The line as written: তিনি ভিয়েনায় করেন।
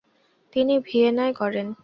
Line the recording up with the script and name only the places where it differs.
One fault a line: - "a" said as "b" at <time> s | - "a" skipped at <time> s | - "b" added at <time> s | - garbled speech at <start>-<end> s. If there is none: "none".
none